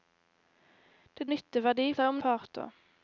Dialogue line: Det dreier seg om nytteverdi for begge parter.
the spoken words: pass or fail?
fail